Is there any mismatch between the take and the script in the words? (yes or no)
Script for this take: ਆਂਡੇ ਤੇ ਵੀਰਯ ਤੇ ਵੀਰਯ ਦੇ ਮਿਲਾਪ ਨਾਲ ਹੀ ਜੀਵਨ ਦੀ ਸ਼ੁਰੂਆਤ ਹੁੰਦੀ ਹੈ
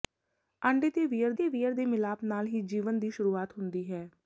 no